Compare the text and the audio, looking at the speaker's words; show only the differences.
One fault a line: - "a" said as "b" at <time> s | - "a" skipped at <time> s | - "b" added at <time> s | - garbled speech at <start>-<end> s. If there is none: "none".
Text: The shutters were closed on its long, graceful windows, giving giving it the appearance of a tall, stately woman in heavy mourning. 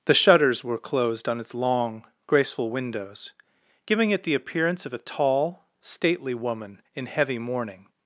- "giving" skipped at 4.1 s